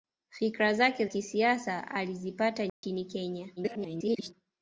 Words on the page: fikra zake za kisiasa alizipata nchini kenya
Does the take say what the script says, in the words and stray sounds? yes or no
no